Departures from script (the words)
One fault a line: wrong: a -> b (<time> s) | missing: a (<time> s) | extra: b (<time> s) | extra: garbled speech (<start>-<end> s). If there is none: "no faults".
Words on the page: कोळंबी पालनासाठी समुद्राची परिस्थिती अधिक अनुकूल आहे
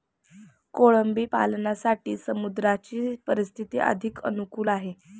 no faults